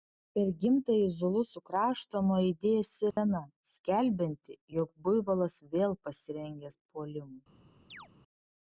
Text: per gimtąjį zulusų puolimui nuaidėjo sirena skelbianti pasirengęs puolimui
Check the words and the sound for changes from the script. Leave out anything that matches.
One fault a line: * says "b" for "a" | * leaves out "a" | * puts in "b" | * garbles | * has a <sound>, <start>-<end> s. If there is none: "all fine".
* says "kraštą" for "puolimui"
* has a dropout, 3.1-3.2 s
* puts in "jog buivolas vėl"
* has a chirp, 7.9-8.1 s